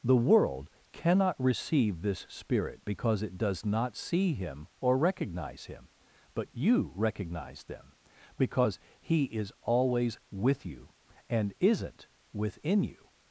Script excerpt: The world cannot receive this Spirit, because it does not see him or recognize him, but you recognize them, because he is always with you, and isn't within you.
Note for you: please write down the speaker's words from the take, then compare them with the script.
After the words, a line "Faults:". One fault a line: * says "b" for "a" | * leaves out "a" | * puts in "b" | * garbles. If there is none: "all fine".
The world cannot receive this Spirit, because it does not see him or recognize him, but you recognize them, because he is always with you, and isn't within you.
Faults:
all fine